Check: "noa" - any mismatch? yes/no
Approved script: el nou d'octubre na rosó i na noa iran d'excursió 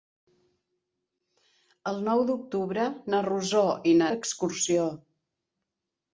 yes